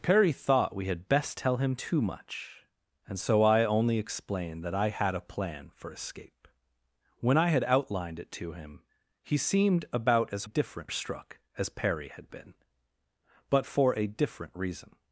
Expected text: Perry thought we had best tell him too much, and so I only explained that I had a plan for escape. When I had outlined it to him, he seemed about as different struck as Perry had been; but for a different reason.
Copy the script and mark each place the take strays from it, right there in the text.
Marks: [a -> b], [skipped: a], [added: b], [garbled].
Perry thought we had best tell him too much, and so I only explained that I had a plan for escape. When I had outlined it to him, he seemed about as different struck as Perry had been; but for a different reason.